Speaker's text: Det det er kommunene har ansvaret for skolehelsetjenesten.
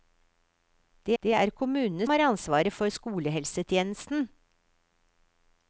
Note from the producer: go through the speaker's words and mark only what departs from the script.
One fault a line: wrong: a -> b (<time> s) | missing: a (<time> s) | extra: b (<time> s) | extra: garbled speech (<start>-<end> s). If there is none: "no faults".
no faults